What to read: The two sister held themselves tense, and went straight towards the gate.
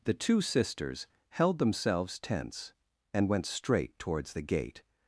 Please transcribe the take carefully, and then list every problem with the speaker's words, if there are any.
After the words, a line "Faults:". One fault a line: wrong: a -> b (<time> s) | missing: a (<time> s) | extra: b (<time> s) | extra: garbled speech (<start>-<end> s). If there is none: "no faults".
The two sisters held themselves tense, and went straight towards the gate.
Faults:
wrong: sister -> sisters (0.4 s)